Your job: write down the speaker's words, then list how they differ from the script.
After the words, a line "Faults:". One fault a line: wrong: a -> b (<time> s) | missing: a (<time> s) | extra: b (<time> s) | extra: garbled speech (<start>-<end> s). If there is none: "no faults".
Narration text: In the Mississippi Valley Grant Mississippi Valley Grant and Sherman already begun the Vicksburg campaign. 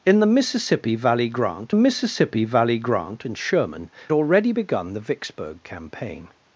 In the Mississippi Valley Grant Mississippi Valley Grant and Sherman already begun the Vicksburg campaign.
Faults:
no faults